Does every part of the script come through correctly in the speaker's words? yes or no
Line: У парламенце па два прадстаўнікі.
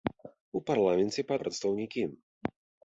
no